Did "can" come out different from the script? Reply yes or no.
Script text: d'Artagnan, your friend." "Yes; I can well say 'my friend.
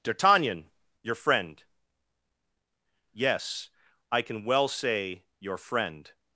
no